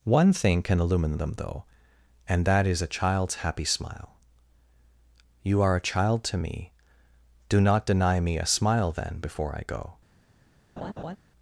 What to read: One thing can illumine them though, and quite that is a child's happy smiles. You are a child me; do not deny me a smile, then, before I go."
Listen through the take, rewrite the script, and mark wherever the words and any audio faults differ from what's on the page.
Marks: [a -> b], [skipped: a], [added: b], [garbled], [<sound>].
One thing can illumine them though, and [skipped: quite] that is a child's happy [smiles. -> smile] You are a child [added: to] me; do not deny me a smile, then, before I go." [laugh]